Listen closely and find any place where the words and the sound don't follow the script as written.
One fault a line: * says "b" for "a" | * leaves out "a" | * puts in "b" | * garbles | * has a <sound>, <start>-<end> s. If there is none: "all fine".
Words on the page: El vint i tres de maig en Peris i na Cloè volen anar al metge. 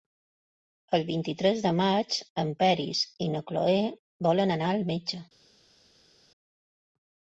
all fine